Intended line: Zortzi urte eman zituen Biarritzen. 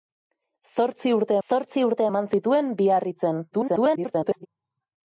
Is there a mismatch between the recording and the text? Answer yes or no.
yes